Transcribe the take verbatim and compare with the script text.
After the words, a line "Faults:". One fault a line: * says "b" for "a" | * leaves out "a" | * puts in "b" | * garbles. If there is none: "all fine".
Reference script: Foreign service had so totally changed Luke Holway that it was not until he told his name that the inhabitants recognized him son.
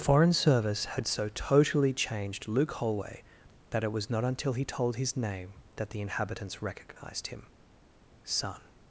Foreign service had so totally changed Luke Holway that it was not until he told his name that the inhabitants recognized him son.
Faults:
all fine